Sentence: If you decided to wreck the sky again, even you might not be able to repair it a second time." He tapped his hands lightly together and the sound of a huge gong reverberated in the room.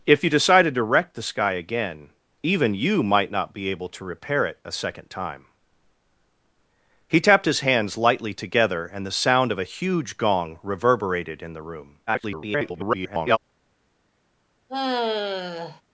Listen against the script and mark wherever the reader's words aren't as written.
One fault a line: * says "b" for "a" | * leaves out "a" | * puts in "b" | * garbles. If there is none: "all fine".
* garbles